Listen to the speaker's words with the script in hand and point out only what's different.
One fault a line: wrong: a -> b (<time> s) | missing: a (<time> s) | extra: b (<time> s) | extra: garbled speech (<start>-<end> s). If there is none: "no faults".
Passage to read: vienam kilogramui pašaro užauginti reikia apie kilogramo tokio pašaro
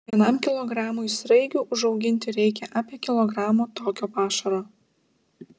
wrong: pašaro -> sraigių (1.1 s)